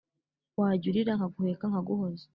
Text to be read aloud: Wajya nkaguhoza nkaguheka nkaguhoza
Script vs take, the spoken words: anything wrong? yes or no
yes